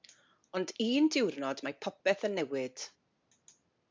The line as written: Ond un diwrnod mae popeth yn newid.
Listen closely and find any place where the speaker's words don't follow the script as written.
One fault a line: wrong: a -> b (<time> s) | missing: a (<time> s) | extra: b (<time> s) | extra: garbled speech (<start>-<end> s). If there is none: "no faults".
no faults